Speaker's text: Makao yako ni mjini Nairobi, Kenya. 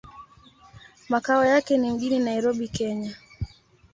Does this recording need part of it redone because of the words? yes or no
yes